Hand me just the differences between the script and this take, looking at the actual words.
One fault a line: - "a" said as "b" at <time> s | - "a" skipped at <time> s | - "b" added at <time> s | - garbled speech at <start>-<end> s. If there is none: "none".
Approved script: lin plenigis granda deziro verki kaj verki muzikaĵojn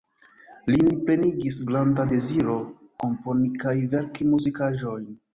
- "verki" said as "komponi" at 3.0 s